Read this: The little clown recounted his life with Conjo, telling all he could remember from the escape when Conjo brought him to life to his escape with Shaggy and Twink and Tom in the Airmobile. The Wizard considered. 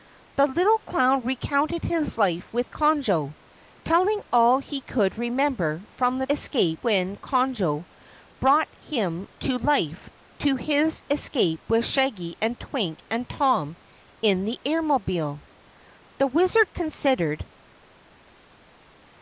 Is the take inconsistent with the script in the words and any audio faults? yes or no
no